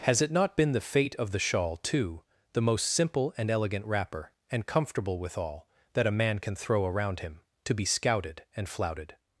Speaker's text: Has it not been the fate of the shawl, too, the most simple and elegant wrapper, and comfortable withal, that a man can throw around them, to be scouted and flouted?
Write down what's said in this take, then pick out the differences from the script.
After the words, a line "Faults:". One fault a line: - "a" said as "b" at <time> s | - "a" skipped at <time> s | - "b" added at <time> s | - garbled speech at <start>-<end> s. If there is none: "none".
Has it not been the fate of the shawl, too, the most simple and elegant wrapper, and comfortable withal, that a man can throw around him, to be scouted and flouted?
Faults:
- "them" said as "him" at 7.2 s